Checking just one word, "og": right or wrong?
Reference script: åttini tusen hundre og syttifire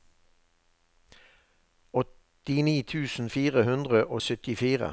right